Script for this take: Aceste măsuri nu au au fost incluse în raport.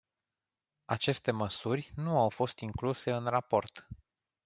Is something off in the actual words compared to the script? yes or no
yes